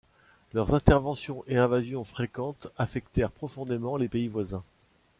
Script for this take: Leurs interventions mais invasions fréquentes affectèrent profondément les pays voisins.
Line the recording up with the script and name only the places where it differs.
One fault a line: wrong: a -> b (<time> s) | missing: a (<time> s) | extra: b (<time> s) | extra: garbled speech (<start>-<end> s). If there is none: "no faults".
wrong: mais -> et (1.5 s)